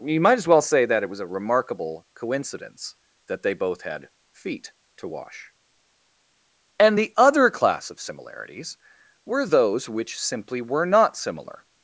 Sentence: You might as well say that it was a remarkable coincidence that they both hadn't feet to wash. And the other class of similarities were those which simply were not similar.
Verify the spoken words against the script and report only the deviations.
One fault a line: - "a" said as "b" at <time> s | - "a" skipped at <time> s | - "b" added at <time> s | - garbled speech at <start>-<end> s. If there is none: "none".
- "hadn't" said as "had" at 3.8 s